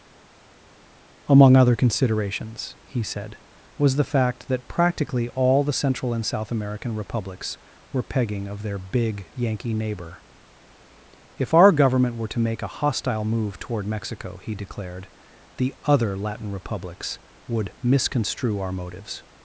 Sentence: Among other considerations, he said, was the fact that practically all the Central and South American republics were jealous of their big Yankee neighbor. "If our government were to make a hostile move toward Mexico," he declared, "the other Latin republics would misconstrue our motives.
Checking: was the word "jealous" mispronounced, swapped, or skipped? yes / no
yes